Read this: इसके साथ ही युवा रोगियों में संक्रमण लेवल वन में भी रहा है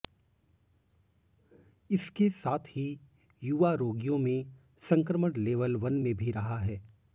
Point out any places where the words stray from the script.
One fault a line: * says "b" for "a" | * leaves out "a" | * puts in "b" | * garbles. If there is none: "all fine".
all fine